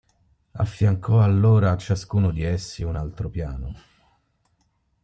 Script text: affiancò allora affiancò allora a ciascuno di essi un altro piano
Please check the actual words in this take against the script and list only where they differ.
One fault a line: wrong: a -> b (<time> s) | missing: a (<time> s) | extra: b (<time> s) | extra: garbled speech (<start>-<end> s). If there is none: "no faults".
missing: affiancò allora (1.7 s)